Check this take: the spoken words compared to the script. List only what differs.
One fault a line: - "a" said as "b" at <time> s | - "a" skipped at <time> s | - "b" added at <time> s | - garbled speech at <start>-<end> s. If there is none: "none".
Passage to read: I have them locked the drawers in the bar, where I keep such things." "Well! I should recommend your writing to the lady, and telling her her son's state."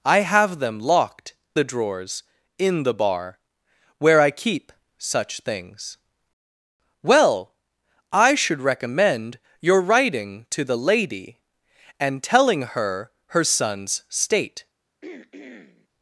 none